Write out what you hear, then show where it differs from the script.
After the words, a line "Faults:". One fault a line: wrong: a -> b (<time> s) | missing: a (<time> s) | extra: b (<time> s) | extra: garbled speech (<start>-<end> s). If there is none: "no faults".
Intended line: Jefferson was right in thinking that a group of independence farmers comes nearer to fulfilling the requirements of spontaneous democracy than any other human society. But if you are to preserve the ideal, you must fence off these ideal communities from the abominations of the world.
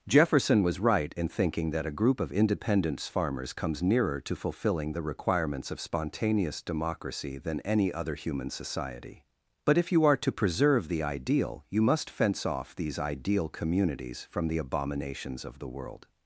Jefferson was right in thinking that a group of independence farmers comes nearer to fulfilling the requirements of spontaneous democracy than any other human society. But if you are to preserve the ideal, you must fence off these ideal communities from the abominations of the world.
Faults:
no faults